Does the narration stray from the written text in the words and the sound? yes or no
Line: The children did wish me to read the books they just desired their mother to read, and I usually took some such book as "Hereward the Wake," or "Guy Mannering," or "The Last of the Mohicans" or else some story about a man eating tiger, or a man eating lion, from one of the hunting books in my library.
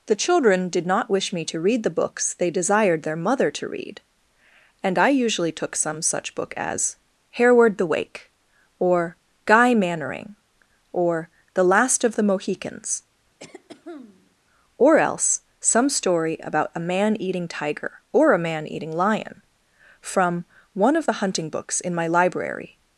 yes